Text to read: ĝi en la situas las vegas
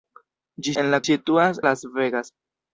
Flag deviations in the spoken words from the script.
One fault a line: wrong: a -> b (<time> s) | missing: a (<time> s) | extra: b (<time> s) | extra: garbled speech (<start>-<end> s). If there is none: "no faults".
no faults